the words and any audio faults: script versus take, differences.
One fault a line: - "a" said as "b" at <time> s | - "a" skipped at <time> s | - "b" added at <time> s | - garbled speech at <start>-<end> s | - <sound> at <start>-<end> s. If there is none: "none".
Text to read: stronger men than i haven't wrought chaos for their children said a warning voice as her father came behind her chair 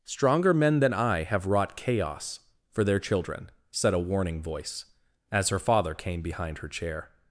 - "haven't" said as "have" at 1.2 s